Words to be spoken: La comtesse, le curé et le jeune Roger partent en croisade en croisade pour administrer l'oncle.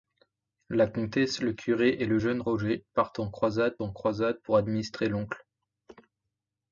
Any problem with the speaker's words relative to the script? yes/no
no